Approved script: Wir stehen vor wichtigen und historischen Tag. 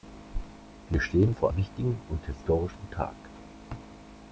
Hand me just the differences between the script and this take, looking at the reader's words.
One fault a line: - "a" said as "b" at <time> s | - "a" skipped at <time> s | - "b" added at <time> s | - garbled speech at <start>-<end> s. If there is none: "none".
none